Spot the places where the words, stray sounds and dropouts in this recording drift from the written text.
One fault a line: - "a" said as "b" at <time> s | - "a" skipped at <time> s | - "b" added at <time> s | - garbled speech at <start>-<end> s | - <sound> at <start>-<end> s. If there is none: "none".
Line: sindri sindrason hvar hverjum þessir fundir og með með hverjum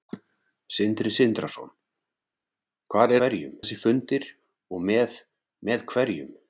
none